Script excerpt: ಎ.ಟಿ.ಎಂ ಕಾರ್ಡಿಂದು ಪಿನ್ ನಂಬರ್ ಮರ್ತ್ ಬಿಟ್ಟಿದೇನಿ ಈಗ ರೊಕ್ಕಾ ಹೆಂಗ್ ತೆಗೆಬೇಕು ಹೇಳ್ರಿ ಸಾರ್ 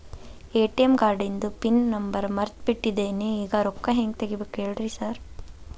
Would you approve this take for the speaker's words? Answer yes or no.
yes